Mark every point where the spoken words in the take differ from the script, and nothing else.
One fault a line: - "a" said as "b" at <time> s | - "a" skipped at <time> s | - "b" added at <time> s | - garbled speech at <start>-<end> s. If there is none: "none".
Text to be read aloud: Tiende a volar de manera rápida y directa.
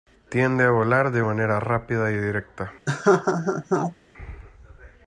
none